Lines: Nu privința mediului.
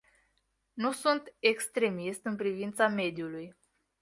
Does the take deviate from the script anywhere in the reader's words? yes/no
yes